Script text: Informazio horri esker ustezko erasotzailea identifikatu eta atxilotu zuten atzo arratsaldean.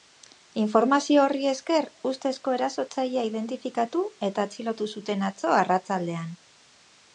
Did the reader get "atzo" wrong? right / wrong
right